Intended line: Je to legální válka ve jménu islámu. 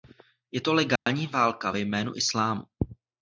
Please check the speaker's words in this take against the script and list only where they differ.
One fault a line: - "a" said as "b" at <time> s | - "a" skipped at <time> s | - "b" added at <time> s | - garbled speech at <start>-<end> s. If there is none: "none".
none